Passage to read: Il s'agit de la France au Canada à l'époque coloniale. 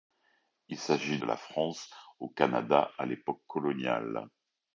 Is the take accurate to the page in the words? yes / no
yes